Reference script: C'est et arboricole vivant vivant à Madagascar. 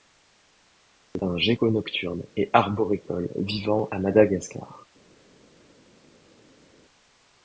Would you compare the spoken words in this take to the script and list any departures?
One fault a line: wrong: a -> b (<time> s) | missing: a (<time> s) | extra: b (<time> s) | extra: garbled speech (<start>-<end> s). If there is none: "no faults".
extra: un gecko nocturne (1.2 s)
missing: vivant (3.9 s)